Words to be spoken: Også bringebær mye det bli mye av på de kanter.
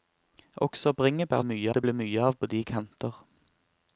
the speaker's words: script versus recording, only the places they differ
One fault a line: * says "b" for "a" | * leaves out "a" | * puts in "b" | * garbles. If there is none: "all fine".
all fine